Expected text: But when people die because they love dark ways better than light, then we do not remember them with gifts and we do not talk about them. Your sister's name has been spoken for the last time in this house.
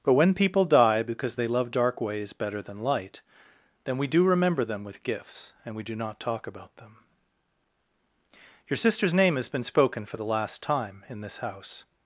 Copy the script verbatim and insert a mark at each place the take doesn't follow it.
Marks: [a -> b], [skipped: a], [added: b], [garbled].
But when people die because they love dark ways better than light, then we do [skipped: not] remember them with gifts and we do not talk about them. Your sister's name has been spoken for the last time in this house.